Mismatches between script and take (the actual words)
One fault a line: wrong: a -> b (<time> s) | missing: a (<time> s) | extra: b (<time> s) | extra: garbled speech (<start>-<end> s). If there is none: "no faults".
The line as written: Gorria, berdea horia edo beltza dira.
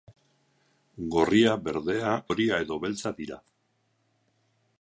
no faults